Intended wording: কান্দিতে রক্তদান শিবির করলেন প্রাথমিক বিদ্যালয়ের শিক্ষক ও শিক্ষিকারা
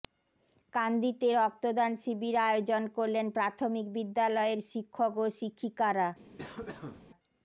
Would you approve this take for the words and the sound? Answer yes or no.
no